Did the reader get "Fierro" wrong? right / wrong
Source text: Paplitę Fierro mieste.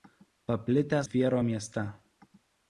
right